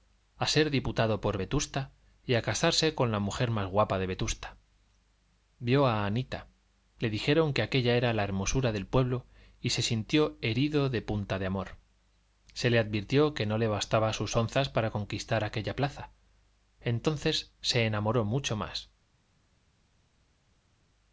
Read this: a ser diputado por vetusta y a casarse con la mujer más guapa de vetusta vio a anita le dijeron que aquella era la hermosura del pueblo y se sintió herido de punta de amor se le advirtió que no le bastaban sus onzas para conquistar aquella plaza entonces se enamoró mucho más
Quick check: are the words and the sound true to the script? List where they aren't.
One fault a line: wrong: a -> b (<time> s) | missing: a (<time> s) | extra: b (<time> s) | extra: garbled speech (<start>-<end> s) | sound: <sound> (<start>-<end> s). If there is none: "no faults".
no faults